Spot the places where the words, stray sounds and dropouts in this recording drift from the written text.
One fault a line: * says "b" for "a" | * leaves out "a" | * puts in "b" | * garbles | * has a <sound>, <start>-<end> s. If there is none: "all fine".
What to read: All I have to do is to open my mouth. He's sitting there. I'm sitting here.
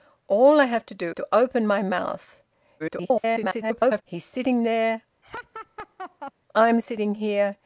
* leaves out "is"
* garbles
* has a laugh, 5.2-6.3 s